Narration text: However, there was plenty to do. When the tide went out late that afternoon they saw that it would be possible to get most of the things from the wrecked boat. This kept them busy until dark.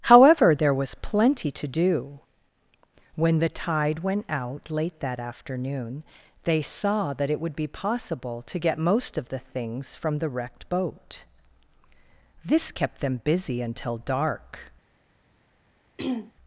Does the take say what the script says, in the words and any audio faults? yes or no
no